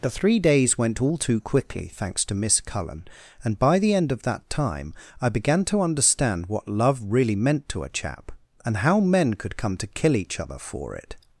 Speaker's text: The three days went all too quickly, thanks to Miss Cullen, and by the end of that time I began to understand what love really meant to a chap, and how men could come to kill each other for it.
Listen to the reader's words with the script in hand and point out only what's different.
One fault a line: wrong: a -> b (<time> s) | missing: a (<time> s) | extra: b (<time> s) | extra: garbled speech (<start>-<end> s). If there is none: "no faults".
no faults